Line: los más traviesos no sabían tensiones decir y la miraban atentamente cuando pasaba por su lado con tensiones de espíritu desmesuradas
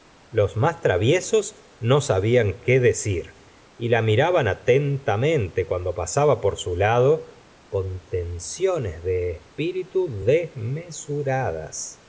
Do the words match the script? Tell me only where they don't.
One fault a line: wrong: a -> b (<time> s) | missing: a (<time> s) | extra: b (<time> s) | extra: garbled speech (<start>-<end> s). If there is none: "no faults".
wrong: tensiones -> qué (2.6 s)